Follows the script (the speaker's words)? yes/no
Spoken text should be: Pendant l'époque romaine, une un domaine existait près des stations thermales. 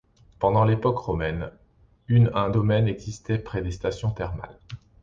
yes